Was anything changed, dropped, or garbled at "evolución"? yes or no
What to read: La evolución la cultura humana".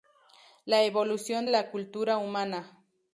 no